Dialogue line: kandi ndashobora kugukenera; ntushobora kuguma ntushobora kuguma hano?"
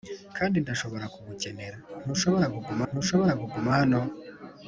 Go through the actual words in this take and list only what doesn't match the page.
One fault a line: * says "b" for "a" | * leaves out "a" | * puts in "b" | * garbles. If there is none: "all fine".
all fine